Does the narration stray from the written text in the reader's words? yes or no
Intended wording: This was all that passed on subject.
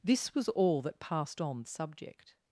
no